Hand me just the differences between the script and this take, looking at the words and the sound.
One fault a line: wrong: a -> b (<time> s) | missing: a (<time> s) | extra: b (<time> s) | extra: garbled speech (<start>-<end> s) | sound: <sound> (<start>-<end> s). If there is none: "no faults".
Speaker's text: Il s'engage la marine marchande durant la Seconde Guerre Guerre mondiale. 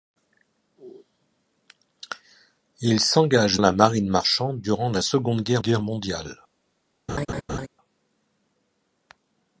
sound: laugh (7.1-7.7 s)